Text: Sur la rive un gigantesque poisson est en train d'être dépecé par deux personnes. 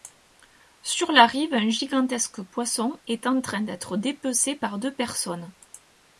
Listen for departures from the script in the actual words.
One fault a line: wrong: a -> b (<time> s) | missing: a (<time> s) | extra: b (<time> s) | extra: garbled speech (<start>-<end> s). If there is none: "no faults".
no faults